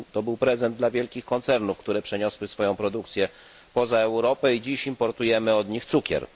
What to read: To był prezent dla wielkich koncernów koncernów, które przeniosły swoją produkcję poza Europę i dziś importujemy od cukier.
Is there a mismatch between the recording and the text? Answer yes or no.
yes